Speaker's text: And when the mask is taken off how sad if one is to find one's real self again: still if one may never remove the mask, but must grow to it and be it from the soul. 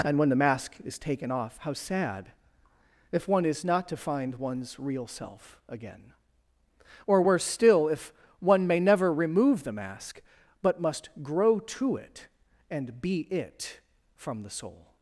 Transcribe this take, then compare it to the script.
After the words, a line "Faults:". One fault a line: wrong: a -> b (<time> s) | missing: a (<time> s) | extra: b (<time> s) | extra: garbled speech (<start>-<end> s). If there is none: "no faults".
And when the mask is taken off how sad if one is not to find one's real self again: or worse still if one may never remove the mask, but must grow to it and be it from the soul.
Faults:
extra: not (3.6 s)
extra: or worse (7.1 s)